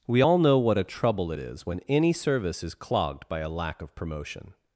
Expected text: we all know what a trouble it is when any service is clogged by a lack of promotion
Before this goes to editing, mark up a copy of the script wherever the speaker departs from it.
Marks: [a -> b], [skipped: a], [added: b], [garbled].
we all know what a trouble it is when any service is clogged by a lack of promotion